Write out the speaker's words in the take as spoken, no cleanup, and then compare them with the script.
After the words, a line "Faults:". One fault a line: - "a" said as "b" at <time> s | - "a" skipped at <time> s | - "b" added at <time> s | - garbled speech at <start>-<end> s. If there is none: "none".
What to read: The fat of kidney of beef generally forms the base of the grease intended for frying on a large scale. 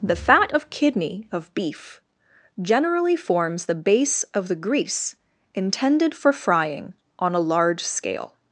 The fat of kidney of beef generally forms the base of the grease intended for frying on a large scale.
Faults:
none